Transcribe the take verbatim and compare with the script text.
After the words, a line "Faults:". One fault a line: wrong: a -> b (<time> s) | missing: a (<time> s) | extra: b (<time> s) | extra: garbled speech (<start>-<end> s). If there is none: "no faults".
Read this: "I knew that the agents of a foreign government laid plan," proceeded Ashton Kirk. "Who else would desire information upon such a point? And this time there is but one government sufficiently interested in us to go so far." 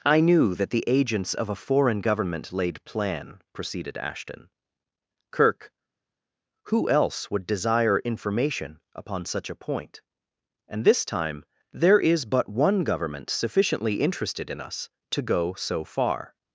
"I knew that the agents of a foreign government laid plan," proceeded Ashton Kirk. "Who else would desire information upon such a point? And this time there is but one government sufficiently interested in us to go so far."
Faults:
no faults